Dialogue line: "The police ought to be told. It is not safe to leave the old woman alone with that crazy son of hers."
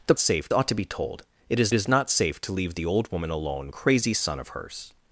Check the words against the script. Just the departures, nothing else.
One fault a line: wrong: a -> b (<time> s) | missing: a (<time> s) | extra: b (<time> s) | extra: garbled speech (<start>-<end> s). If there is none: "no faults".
wrong: police -> safe (0.2 s)
extra: is (1.7 s)
missing: with that (3.7 s)